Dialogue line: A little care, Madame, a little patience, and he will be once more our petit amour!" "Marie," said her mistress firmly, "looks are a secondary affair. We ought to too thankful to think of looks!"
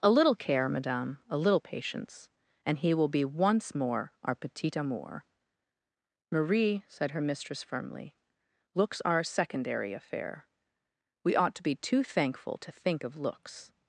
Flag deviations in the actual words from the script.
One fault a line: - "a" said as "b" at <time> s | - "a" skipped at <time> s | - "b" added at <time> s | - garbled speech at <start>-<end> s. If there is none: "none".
- "be" added at 11.6 s